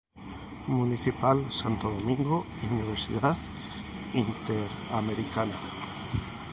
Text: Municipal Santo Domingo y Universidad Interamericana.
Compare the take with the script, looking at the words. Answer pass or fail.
pass